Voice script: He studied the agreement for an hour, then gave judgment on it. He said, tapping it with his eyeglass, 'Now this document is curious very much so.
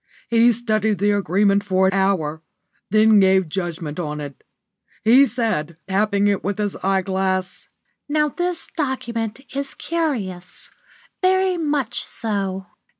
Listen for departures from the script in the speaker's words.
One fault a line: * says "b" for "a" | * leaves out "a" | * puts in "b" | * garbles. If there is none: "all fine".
* leaves out "an"